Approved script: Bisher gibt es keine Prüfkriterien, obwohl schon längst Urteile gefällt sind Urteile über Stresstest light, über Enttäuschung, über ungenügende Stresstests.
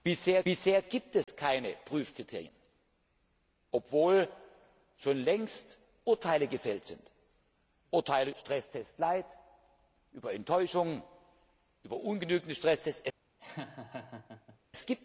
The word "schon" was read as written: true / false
true